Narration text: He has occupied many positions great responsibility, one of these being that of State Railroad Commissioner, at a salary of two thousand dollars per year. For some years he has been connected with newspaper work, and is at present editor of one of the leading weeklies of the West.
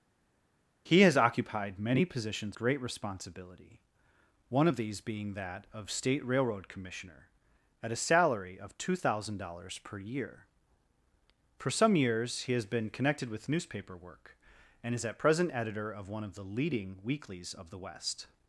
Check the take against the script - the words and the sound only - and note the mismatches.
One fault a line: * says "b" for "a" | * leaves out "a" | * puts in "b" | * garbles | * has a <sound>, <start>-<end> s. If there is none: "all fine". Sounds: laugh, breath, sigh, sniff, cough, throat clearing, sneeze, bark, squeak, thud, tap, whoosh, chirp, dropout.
all fine